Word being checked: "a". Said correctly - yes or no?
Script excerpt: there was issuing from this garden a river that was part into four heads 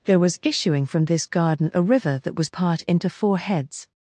yes